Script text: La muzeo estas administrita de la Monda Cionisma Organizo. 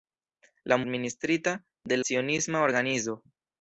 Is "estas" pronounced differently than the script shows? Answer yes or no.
yes